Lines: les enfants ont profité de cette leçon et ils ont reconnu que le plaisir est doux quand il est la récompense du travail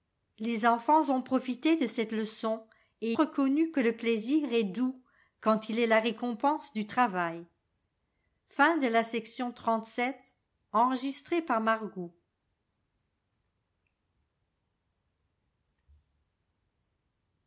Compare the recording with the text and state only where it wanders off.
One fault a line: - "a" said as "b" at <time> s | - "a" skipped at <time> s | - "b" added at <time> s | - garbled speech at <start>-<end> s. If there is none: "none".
- "ils ont" skipped at 3.1 s